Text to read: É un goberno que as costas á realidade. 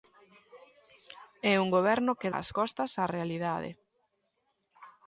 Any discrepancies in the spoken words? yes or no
no